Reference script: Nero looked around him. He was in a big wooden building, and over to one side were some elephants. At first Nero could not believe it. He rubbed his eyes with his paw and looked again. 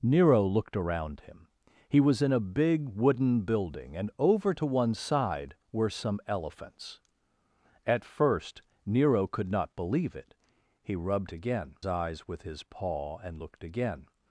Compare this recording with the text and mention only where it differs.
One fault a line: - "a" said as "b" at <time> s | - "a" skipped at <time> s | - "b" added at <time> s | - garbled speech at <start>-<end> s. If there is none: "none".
- "his" said as "again" at 11.3 s